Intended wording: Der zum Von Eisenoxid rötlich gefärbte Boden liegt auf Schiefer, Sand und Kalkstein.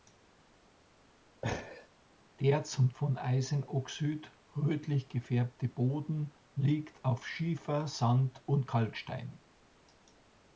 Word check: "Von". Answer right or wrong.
right